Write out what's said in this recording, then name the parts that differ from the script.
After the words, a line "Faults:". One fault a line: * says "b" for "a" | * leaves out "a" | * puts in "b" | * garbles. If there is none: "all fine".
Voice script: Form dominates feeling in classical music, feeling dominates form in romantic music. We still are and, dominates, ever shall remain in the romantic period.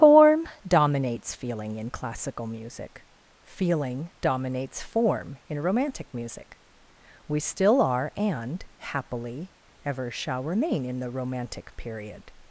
Form dominates feeling in classical music, feeling dominates form in romantic music. We still are and, happily, ever shall remain in the romantic period.
Faults:
* says "happily" for "dominates"